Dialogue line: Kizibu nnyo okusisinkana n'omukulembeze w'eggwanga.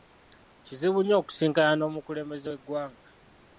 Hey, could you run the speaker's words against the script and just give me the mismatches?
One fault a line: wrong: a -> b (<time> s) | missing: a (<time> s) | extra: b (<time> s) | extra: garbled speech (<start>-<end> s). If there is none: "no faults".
no faults